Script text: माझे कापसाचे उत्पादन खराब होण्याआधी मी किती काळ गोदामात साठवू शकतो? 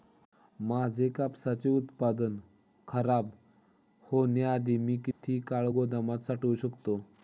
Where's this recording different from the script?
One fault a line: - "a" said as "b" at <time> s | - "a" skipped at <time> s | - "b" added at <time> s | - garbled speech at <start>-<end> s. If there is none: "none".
none